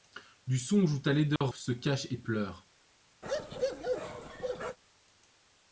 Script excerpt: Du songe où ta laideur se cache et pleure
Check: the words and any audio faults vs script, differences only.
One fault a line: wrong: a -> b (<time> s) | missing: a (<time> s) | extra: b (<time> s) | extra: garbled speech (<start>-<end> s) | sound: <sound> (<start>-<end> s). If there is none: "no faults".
sound: dropout (1.4-1.4 s)
sound: bark (3.2-4.8 s)